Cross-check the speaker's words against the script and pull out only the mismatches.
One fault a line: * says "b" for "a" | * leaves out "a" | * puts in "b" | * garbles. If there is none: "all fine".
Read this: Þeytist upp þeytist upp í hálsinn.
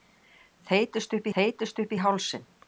all fine